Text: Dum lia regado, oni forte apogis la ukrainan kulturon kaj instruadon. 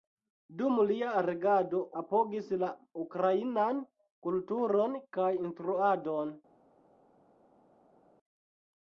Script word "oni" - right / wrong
wrong